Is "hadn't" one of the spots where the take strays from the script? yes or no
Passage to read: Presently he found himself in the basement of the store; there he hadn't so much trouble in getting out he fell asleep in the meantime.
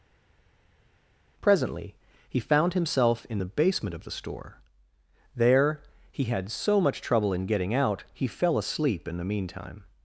yes